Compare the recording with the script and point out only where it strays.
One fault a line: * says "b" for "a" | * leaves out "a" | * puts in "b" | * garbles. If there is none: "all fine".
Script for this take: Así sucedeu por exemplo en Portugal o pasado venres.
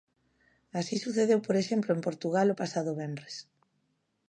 all fine